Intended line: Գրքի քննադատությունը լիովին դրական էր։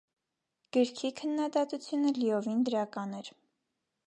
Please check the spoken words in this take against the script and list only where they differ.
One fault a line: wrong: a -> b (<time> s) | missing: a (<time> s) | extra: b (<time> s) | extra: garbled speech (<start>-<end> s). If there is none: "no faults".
no faults